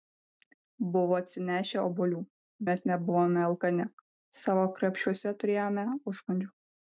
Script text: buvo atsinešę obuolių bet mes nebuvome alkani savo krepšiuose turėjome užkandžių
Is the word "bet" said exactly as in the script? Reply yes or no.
no